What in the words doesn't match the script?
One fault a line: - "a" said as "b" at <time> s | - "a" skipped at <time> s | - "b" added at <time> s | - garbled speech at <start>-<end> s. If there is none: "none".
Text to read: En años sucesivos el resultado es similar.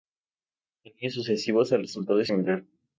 none